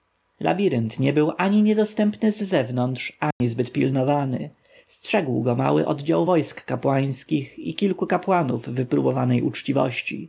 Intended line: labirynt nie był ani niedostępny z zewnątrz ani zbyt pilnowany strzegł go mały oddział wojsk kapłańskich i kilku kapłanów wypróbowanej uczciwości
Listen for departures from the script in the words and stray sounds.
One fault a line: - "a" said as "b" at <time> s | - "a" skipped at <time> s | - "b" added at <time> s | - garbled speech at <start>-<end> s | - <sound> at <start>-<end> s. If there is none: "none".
- dropout at 3.3-3.4 s